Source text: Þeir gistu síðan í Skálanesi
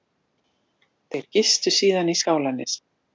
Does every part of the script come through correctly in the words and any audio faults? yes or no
yes